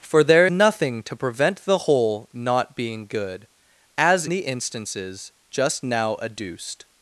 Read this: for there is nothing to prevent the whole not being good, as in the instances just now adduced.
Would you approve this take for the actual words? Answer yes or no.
no